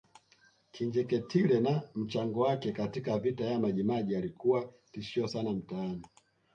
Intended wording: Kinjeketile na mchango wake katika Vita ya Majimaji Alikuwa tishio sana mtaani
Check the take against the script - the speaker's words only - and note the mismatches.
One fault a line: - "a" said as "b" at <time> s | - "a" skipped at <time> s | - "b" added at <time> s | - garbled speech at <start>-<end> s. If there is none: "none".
none